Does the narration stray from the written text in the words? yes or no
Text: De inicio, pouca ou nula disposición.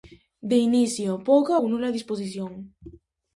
no